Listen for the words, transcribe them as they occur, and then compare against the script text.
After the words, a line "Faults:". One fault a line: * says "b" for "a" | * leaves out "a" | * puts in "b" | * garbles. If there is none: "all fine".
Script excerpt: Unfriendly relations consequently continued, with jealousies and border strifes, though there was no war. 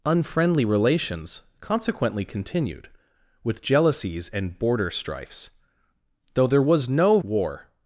Unfriendly relations consequently continued, with jealousies and border strifes, though there was no war.
Faults:
all fine